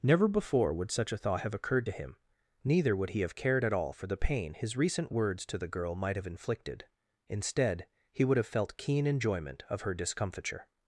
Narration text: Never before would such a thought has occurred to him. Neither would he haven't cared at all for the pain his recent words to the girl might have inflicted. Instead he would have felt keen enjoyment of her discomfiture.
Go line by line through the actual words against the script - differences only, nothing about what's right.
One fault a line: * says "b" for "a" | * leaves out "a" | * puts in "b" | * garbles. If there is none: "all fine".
* says "have" for "has"
* says "have" for "haven't"